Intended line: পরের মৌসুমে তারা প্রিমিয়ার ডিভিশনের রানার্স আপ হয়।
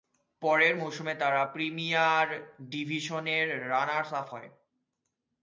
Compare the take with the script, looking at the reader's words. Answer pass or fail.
pass